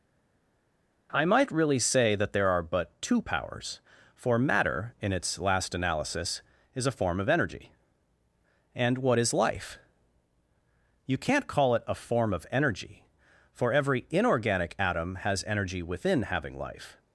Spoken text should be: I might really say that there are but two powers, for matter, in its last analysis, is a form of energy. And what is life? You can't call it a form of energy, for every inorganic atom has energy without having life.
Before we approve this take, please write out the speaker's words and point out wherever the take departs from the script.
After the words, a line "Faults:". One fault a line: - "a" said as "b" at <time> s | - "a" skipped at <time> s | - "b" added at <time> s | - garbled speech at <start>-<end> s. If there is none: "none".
I might really say that there are but two powers, for matter, in its last analysis, is a form of energy. And what is life? You can't call it a form of energy, for every inorganic atom has energy within having life.
Faults:
- "without" said as "within" at 15.8 s